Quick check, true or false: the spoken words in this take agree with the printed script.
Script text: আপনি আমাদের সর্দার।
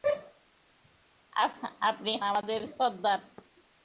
true